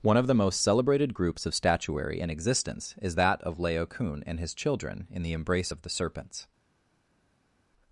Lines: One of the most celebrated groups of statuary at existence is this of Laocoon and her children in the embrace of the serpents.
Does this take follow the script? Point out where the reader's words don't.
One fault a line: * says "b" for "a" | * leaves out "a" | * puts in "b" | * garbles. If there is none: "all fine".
* says "in" for "at"
* says "that" for "this"
* says "his" for "her"